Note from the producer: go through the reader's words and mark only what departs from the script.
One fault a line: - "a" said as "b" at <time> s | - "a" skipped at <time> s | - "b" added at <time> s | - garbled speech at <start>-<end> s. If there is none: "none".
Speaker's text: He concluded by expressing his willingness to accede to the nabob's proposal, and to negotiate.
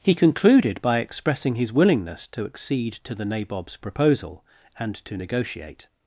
none